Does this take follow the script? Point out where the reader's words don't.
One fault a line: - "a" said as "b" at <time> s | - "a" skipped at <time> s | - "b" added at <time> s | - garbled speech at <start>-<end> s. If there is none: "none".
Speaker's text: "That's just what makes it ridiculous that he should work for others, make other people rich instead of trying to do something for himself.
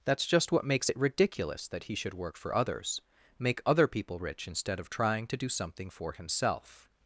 none